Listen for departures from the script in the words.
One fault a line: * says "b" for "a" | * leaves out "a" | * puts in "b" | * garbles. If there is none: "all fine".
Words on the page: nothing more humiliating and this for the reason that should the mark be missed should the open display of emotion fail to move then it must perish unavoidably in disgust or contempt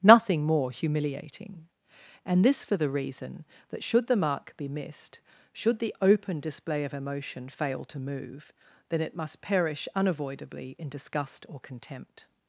all fine